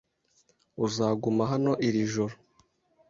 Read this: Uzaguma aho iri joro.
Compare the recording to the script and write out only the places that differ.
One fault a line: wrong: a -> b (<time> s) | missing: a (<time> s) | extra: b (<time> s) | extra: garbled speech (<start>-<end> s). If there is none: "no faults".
wrong: aho -> hano (1.5 s)